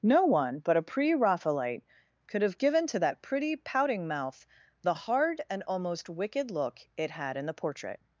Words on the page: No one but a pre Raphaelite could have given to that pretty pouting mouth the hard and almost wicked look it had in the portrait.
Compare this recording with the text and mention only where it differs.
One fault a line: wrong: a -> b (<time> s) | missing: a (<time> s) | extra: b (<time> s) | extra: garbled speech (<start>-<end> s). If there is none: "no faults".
no faults